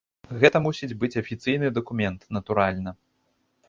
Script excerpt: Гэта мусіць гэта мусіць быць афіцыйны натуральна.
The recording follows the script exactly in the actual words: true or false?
false